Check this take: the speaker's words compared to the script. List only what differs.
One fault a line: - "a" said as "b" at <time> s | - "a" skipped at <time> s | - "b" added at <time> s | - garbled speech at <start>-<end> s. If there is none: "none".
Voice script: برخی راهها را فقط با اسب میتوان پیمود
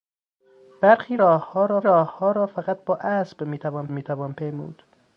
- "راهها را" added at 1.8 s
- "میتوان" added at 3.9 s